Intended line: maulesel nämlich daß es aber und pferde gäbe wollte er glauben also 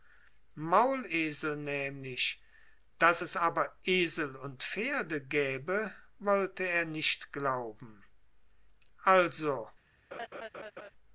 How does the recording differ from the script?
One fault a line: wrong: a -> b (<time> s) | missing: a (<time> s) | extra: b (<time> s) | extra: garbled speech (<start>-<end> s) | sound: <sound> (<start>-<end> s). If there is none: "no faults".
extra: esel (3.8 s)
extra: nicht (6.9 s)
sound: laugh (10.1-10.9 s)